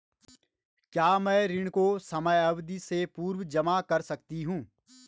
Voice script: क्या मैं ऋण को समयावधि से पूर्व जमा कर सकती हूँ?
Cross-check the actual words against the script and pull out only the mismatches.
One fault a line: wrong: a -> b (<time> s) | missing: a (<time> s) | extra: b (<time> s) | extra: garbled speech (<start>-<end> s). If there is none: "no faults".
no faults